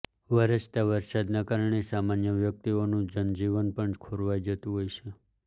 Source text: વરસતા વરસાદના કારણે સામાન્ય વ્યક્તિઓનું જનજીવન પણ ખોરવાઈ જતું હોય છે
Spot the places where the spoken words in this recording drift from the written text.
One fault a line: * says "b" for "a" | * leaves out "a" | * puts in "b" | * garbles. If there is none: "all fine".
all fine